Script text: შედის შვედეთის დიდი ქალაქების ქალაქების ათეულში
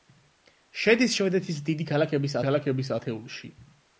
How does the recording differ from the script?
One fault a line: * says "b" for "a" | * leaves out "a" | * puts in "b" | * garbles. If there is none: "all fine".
all fine